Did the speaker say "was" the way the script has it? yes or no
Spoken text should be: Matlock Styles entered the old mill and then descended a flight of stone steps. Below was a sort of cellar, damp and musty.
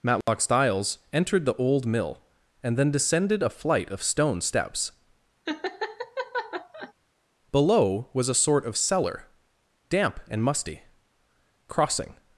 yes